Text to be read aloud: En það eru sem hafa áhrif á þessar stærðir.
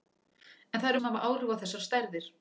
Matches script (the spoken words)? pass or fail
pass